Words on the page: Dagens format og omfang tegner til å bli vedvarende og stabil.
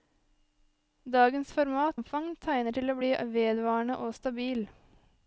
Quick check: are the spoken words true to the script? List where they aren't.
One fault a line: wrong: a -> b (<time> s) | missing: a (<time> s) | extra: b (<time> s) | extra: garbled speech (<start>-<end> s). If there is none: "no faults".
missing: og (2.0 s)